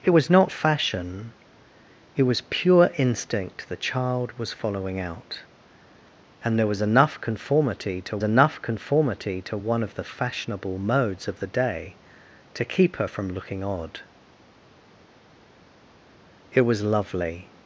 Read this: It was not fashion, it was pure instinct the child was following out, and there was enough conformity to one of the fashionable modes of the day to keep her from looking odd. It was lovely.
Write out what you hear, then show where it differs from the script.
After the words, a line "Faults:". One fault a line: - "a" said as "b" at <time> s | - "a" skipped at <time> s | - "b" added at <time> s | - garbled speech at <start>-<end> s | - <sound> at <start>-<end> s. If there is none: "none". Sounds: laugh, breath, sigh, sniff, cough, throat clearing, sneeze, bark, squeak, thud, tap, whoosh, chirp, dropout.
It was not fashion, it was pure instinct the child was following out, and there was enough conformity to enough conformity to one of the fashionable modes of the day to keep her from looking odd. It was lovely.
Faults:
- "enough conformity to" added at 8.2 s